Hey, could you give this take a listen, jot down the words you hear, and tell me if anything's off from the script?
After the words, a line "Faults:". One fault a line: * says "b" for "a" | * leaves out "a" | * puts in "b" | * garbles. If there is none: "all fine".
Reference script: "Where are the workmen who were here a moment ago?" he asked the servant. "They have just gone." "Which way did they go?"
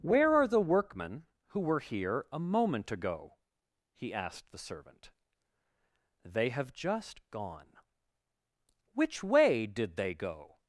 "Where are the workmen who were here a moment ago?" he asked the servant. "They have just gone." "Which way did they go?"
Faults:
all fine